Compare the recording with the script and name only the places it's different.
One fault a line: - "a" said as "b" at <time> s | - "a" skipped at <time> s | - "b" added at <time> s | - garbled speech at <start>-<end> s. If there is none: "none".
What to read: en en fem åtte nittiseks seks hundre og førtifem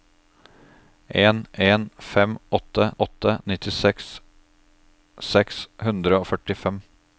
- "åtte" added at 3.1 s